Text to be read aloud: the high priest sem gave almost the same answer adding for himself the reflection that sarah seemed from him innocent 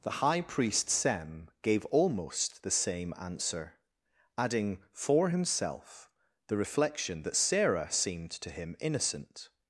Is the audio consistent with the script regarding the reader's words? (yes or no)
no